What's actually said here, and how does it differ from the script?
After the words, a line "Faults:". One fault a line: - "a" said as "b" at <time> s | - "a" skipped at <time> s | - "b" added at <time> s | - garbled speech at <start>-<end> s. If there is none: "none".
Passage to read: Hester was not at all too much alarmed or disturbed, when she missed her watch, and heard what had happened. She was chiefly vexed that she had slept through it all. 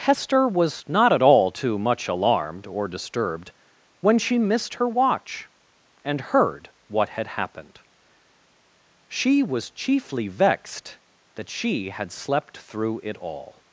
Hester was not at all too much alarmed or disturbed, when she missed her watch, and heard what had happened. She was chiefly vexed that she had slept through it all.
Faults:
none